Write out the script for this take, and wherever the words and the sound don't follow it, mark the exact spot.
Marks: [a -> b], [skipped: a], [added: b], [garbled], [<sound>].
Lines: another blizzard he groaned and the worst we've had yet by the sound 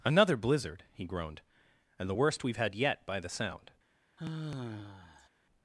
another blizzard he groaned and the worst we've had yet by the sound [sigh]